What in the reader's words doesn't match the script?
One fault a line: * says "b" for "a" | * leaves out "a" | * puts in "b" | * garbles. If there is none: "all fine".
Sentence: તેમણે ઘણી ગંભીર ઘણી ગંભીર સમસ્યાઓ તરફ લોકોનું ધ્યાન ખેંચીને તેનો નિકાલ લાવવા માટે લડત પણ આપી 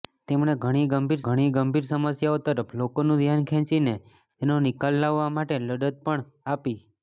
all fine